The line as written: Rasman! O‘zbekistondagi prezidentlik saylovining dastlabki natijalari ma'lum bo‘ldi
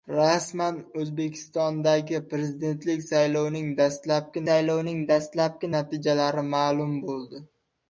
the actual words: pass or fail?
fail